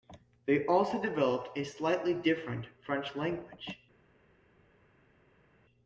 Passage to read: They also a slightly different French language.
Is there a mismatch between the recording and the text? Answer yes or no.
yes